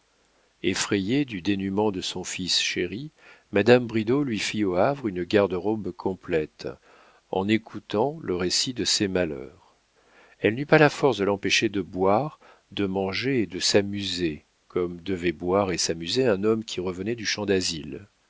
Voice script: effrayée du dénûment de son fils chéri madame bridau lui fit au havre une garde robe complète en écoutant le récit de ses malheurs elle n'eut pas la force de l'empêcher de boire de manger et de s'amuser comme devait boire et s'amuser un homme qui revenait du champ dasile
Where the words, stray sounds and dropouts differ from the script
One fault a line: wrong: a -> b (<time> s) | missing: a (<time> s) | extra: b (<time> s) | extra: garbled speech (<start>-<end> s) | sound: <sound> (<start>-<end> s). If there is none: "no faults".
no faults